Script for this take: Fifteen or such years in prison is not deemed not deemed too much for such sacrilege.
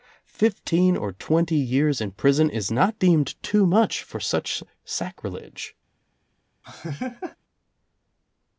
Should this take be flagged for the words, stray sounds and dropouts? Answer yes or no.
yes